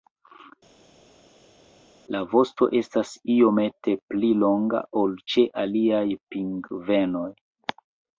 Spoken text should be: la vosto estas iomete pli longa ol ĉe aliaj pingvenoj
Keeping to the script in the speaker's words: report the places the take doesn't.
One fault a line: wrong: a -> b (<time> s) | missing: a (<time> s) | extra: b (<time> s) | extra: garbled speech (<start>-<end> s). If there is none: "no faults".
no faults